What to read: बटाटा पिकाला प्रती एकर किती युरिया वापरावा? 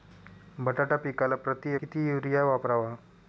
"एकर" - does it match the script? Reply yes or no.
no